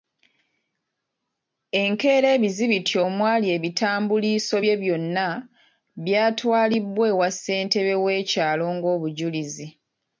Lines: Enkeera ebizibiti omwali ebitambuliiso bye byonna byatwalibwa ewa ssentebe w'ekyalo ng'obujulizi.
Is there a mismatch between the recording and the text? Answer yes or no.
no